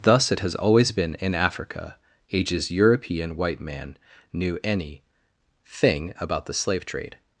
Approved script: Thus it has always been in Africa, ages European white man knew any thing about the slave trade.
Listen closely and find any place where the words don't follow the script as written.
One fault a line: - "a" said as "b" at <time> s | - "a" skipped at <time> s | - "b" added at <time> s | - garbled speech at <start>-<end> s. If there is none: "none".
none